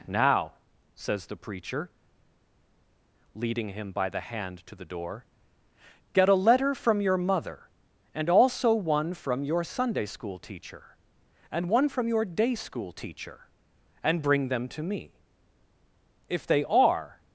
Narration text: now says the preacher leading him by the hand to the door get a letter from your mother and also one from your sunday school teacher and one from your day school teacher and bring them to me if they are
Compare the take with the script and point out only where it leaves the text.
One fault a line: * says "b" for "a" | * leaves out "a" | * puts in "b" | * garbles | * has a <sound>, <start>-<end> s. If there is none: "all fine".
all fine